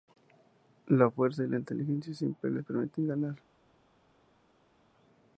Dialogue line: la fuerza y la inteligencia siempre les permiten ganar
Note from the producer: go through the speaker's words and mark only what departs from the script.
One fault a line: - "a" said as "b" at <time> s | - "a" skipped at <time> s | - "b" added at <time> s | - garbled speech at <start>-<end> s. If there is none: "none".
none